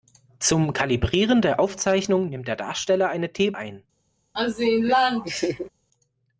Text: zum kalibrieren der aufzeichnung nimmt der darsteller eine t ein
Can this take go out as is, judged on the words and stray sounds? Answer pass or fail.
fail